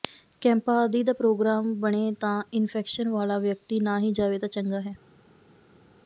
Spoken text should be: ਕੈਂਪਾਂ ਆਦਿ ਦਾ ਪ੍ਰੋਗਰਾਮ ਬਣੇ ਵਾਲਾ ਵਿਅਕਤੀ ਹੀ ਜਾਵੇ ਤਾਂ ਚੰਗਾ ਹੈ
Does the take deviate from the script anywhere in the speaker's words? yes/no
yes